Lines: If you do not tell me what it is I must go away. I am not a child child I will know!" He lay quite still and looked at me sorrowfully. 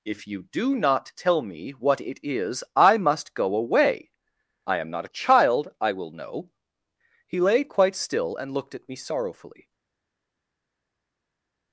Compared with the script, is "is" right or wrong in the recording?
right